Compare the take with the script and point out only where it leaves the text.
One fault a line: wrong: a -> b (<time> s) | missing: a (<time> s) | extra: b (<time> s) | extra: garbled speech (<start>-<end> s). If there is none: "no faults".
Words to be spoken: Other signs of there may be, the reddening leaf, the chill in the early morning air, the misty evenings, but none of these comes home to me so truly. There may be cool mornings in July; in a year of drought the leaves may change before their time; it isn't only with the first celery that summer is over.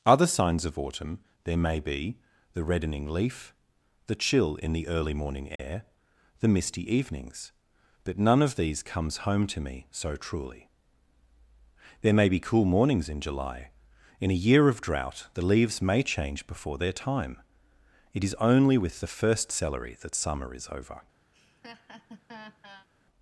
extra: autumn (0.8 s)
wrong: isn't -> is (18.2 s)